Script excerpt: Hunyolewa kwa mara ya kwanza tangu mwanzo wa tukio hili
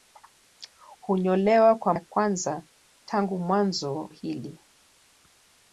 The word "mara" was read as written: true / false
false